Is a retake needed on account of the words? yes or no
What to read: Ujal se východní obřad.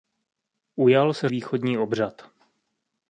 no